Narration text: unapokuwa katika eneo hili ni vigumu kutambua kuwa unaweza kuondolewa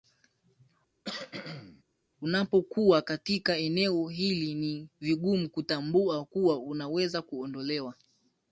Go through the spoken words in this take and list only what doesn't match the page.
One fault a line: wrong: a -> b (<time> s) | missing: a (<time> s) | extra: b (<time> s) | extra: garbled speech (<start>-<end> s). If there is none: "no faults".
no faults